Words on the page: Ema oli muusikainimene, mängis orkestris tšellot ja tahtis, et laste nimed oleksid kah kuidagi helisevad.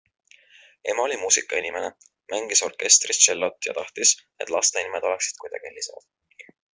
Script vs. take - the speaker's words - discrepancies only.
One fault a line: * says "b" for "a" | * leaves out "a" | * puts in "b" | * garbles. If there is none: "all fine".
* leaves out "kah"